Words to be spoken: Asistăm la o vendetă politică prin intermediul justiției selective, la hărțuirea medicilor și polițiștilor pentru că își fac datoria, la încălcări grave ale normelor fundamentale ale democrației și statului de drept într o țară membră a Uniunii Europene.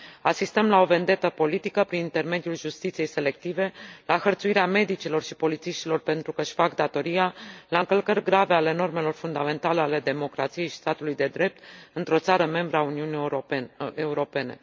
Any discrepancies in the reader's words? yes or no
no